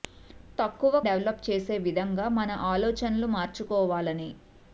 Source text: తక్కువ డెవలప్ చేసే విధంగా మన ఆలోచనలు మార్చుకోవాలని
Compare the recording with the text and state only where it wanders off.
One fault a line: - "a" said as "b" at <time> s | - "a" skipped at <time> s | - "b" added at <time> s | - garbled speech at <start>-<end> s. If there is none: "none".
none